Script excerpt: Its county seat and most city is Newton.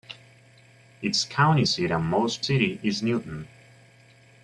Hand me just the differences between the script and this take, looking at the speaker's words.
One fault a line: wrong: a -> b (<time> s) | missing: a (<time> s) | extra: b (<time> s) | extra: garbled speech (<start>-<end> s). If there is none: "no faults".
no faults